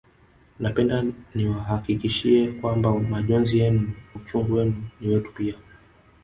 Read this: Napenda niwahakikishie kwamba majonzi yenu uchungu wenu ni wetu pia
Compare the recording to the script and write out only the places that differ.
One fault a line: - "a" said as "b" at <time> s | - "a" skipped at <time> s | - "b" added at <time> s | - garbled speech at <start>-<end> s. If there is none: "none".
none